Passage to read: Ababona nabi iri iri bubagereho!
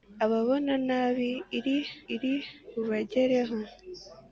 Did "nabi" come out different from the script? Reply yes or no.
no